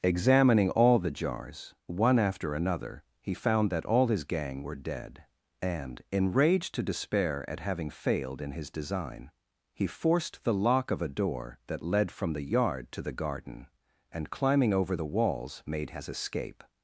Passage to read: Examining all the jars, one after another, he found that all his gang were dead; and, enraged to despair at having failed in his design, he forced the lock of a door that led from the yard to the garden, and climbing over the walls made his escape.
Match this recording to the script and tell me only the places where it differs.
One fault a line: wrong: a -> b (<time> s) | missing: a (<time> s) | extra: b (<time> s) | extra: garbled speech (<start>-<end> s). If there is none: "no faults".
no faults